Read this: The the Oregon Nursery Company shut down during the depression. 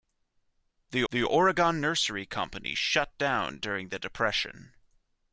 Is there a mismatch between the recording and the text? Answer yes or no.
no